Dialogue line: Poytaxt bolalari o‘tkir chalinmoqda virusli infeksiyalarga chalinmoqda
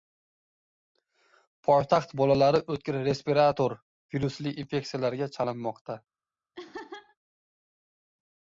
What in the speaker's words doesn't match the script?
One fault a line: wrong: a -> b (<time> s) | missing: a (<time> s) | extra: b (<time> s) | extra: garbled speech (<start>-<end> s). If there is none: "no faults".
wrong: chalinmoqda -> respirator (3.1 s)